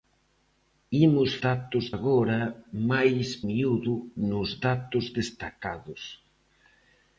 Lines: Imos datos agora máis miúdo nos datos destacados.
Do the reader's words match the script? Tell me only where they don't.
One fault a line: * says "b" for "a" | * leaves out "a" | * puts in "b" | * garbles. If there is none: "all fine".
all fine